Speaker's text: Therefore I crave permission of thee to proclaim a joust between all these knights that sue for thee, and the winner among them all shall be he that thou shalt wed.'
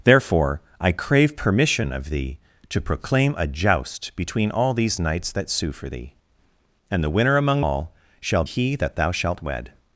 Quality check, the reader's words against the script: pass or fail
fail